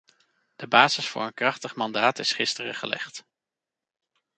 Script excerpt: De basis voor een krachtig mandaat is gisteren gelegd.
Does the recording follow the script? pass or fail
pass